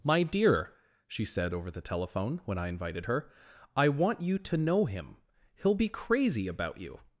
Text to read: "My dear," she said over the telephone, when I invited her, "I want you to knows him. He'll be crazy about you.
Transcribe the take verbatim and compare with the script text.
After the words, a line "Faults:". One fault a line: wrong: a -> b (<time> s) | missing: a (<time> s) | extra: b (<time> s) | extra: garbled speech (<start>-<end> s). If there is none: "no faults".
"My dear," she said over the telephone, when I invited her, "I want you to know him. He'll be crazy about you.
Faults:
wrong: knows -> know (4.6 s)